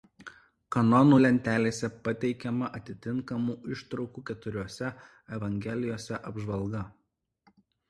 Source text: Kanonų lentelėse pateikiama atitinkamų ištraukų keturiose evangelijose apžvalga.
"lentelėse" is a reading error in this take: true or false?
false